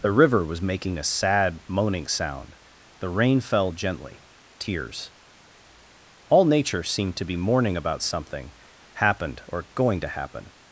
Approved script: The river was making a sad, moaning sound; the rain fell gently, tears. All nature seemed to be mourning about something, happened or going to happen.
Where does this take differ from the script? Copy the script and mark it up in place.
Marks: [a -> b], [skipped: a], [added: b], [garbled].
The river was making a sad, moaning sound; the rain fell gently, tears. All nature seemed to be mourning about something, happened or going to happen.